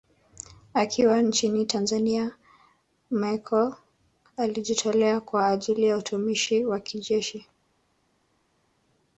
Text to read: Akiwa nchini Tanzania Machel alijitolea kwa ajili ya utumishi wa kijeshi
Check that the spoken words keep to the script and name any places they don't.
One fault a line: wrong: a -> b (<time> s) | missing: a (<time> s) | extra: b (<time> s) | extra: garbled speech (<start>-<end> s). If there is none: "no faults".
no faults